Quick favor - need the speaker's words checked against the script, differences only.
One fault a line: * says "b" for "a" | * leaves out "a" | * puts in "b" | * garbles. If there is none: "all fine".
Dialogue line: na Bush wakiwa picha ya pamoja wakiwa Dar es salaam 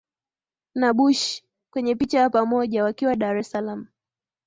* says "kwenye" for "wakiwa"